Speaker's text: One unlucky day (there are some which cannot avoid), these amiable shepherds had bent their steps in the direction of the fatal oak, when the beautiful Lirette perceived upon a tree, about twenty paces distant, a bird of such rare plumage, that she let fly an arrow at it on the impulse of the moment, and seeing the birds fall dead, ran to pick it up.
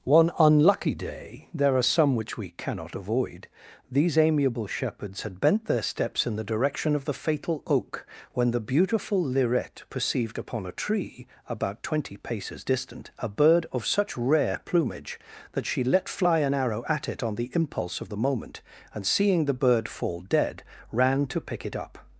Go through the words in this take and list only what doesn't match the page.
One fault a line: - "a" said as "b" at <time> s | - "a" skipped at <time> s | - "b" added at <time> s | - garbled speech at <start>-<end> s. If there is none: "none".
- "we" added at 2.4 s
- "birds" said as "bird" at 19.5 s